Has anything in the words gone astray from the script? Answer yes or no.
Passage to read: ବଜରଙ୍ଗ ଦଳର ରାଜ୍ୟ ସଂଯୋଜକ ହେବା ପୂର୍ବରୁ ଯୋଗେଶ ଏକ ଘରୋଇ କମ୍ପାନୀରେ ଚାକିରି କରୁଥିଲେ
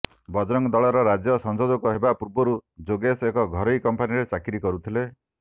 no